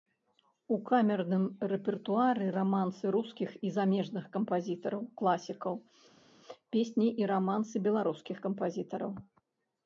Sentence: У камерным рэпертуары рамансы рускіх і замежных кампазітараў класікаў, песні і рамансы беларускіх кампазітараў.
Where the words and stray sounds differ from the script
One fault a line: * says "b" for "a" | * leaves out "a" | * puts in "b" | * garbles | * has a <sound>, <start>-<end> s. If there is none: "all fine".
all fine